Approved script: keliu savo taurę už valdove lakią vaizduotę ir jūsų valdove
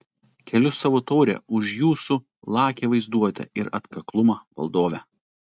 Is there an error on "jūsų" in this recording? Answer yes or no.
yes